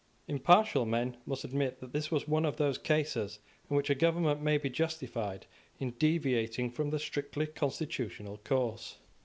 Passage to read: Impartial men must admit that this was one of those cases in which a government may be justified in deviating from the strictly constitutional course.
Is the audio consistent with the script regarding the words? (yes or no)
yes